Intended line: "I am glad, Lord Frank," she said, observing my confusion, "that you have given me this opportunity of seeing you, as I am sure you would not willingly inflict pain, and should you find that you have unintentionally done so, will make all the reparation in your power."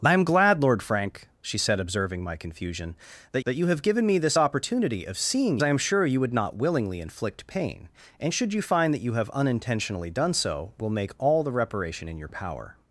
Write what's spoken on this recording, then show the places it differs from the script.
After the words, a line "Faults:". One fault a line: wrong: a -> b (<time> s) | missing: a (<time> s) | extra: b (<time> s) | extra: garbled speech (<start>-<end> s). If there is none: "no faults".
"I am glad, Lord Frank," she said, observing my confusion, "that that you have given me this opportunity of seeing I am sure you would not willingly inflict pain, and should you find that you have unintentionally done so, will make all the reparation in your power."
Faults:
extra: that (3.5 s)
missing: you as (5.6 s)